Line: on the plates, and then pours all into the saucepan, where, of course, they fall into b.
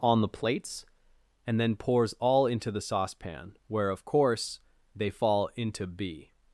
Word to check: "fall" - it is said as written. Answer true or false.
true